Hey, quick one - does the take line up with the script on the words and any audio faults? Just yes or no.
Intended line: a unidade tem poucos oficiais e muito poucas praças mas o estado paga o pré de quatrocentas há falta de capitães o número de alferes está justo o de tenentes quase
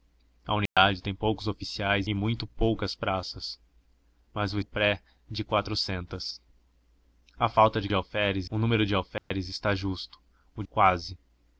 no